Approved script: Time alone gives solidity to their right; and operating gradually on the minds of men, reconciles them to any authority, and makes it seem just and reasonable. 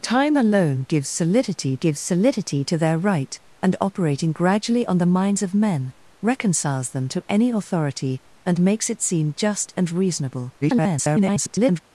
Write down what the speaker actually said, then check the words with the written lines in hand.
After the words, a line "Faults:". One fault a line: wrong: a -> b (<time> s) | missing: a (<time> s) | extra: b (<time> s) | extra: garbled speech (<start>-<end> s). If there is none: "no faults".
Time alone gives solidity gives solidity to their right; and operating gradually on the minds of men, reconciles them to any authority, and makes it seem just and reasonable. [garbled]
Faults:
extra: gives solidity (1.8 s)
extra: garbled speech (10.6-11.8 s)